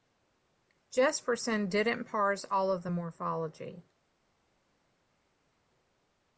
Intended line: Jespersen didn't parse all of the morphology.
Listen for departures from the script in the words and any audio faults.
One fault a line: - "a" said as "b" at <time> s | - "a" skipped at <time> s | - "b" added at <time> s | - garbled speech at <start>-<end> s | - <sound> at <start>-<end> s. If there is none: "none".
none